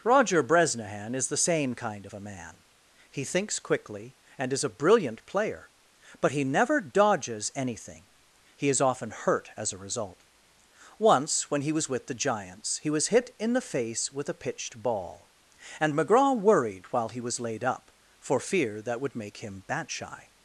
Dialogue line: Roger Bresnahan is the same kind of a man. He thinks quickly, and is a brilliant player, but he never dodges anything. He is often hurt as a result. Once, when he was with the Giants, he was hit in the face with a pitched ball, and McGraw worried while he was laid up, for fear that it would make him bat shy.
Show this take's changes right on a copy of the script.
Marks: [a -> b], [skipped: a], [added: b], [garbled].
Roger Bresnahan is the same kind of a man. He thinks quickly, and is a brilliant player, but he never dodges anything. He is often hurt as a result. Once, when he was with the Giants, he was hit in the face with a pitched ball, and McGraw worried while he was laid up, for fear that [skipped: it] would make him bat shy.